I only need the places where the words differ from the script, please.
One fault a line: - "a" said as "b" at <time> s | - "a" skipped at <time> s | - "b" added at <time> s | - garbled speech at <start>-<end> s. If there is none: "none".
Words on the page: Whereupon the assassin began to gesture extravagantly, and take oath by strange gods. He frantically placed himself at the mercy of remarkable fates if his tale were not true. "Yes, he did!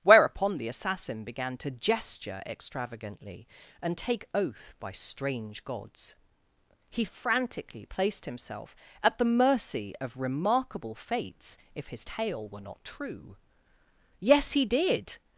none